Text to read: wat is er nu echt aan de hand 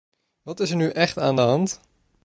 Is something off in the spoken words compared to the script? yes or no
no